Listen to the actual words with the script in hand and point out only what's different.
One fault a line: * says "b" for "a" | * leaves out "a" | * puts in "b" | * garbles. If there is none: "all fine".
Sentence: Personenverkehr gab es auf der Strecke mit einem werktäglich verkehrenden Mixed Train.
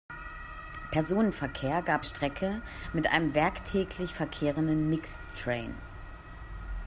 * leaves out "es auf der"